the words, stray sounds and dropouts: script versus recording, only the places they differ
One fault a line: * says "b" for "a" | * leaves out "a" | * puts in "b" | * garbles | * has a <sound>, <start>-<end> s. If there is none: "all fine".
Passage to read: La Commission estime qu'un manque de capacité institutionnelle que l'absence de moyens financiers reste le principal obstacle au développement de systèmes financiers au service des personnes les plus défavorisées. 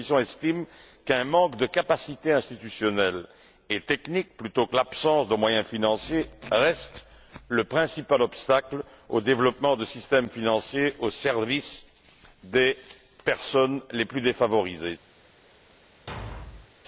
* puts in "et technique plutôt"
* has a thud, 16.1-16.7 s